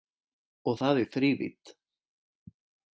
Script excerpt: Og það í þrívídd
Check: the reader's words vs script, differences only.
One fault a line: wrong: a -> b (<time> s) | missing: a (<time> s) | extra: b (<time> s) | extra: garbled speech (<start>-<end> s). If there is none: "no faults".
no faults